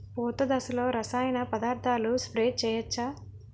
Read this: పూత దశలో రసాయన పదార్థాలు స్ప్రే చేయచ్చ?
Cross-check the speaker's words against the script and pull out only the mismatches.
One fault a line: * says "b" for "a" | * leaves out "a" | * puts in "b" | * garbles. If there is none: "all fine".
all fine